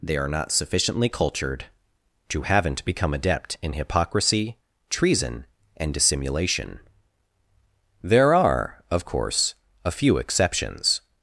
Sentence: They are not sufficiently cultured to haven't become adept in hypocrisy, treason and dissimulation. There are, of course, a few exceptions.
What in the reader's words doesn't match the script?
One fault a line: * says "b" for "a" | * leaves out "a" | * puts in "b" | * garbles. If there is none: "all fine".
all fine